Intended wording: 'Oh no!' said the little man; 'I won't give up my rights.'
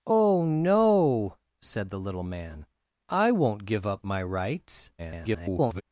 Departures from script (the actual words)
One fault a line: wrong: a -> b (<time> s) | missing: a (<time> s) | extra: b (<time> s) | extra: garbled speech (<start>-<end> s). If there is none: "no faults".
extra: garbled speech (5.0-5.8 s)